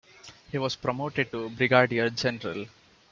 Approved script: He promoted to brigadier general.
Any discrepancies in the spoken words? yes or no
yes